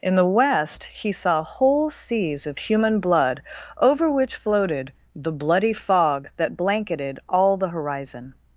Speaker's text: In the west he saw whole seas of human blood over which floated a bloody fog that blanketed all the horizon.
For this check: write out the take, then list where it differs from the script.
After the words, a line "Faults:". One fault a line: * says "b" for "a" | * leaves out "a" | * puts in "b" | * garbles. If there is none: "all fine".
In the west he saw whole seas of human blood over which floated the bloody fog that blanketed all the horizon.
Faults:
* says "the" for "a"